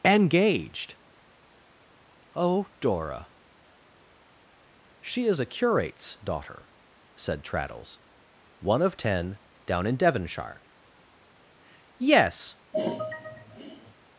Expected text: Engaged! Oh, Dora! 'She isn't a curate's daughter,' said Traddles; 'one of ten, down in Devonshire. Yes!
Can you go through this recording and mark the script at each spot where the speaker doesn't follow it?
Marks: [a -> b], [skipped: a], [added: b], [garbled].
Engaged! Oh, Dora! 'She [isn't -> is] a curate's daughter,' said Traddles; 'one of ten, down in Devonshire. Yes!